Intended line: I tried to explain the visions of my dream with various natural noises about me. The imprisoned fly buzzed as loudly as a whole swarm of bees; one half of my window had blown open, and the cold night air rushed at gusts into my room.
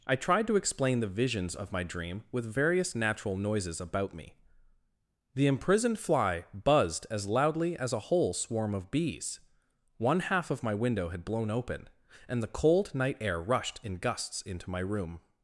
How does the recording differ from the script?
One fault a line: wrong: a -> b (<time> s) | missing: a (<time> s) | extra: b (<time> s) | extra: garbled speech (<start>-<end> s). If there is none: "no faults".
wrong: at -> in (13.8 s)